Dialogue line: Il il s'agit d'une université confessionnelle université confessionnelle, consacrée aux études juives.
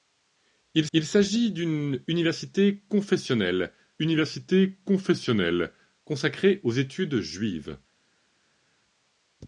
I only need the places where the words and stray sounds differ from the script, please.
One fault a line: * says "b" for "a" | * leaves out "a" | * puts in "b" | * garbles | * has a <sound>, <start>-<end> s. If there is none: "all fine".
all fine